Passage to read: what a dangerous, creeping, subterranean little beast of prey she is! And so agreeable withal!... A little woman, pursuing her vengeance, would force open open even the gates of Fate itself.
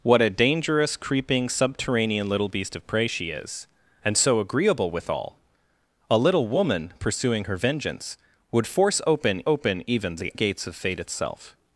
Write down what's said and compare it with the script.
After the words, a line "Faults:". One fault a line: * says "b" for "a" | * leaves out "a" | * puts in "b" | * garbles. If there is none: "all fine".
what a dangerous, creeping, subterranean little beast of prey she is! And so agreeable withal!... A little woman, pursuing her vengeance, would force open open even the gates of Fate itself.
Faults:
all fine